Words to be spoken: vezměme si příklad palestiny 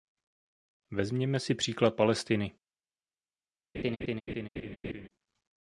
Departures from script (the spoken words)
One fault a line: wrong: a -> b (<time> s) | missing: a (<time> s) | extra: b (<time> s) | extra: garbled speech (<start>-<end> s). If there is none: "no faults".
no faults